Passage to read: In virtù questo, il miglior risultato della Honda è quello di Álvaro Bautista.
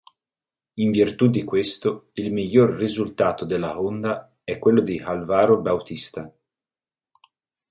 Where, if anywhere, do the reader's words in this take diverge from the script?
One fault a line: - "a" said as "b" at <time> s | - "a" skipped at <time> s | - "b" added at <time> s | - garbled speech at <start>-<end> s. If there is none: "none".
- "di" added at 1.3 s